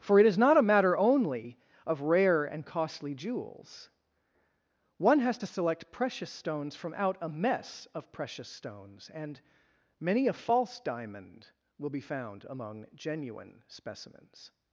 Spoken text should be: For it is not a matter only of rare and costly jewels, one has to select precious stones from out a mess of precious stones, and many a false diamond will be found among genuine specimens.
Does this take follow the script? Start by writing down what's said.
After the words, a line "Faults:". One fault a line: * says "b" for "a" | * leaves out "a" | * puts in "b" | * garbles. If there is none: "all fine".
For it is not a matter only of rare and costly jewels, one has to select precious stones from out a mess of precious stones, and many a false diamond will be found among genuine specimens.
Faults:
all fine